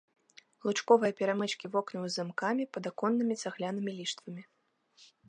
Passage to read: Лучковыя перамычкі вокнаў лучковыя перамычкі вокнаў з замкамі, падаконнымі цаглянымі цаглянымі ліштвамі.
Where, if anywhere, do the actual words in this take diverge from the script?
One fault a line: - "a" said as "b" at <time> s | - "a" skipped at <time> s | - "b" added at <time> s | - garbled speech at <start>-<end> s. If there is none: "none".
- "лучковыя перамычкі вокнаў" skipped at 2.0 s
- "цаглянымі" skipped at 3.9 s